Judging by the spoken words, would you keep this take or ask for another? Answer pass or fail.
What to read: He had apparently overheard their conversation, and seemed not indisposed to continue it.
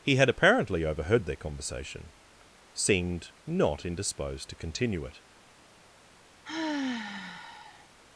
fail